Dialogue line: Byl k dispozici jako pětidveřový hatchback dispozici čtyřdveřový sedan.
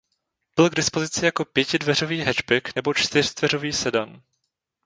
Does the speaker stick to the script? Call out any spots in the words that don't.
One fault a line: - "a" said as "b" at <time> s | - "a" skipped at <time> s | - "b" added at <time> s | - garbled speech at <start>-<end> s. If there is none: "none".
- "dispozici" said as "nebo" at 2.7 s